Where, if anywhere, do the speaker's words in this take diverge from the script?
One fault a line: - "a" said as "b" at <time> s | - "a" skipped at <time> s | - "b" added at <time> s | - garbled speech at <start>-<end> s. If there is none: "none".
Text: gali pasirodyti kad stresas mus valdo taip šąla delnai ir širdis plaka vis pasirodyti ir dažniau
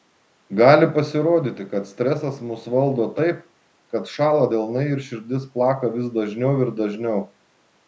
- "kad" added at 4.0 s
- "pasirodyti" said as "dažniau" at 6.2 s